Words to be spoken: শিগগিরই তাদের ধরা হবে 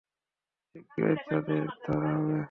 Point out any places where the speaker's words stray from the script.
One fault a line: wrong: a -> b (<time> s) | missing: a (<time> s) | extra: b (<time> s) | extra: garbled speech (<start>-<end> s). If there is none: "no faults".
no faults